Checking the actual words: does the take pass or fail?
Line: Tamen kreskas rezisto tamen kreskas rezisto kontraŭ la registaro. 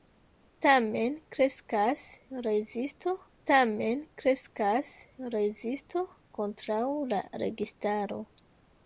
pass